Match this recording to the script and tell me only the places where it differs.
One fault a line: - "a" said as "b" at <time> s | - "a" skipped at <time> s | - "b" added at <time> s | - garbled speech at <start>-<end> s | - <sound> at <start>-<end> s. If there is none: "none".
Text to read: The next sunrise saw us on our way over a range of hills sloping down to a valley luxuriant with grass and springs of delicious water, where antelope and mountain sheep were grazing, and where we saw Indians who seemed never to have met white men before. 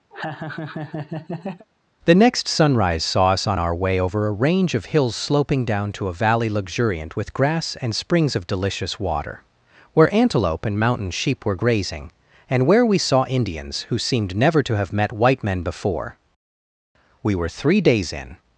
- laugh at 0.1-1.7 s
- "We were three days in" added at 17.2 s